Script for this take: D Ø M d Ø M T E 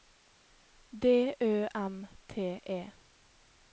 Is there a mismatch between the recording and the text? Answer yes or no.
yes